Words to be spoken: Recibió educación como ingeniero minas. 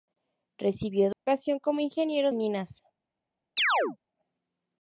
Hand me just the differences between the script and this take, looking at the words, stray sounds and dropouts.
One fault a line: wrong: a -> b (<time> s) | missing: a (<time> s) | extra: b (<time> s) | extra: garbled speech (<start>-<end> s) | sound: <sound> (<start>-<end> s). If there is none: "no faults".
sound: dropout (1.1-1.3 s)
sound: chirp (3.6-4.0 s)